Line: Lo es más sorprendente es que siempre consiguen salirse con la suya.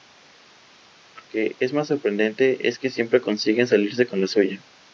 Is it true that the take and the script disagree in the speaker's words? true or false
true